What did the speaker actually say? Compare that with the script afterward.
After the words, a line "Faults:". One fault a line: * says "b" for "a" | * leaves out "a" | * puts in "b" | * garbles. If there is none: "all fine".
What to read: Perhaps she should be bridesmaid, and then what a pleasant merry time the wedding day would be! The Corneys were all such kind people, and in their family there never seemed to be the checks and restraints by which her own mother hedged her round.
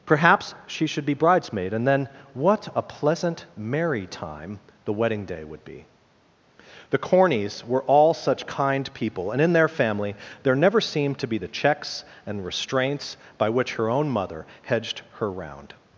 Perhaps she should be bridesmaid, and then what a pleasant merry time the wedding day would be! The Corneys were all such kind people, and in their family there never seemed to be the checks and restraints by which her own mother hedged her round.
Faults:
all fine